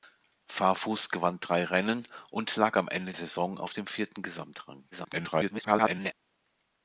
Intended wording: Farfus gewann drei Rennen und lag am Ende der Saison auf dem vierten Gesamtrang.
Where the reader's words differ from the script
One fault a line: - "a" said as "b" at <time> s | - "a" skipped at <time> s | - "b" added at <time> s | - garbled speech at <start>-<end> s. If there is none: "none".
- "der" skipped at 3.1 s
- garbled speech at 4.9-6.1 s